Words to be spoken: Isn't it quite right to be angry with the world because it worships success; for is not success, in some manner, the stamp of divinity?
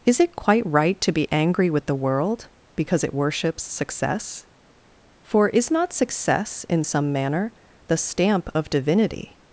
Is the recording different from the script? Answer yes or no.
yes